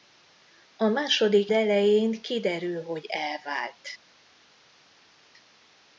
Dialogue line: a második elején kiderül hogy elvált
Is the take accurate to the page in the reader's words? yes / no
yes